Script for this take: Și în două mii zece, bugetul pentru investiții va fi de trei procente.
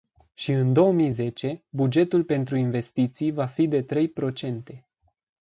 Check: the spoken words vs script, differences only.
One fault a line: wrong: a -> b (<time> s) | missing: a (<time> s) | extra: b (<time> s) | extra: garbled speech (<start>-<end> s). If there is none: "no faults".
no faults